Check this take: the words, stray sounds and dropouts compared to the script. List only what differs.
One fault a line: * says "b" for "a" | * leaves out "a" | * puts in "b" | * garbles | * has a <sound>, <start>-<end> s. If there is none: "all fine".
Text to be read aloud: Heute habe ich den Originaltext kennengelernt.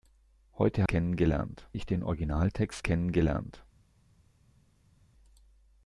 * says "kennengelernt" for "habe"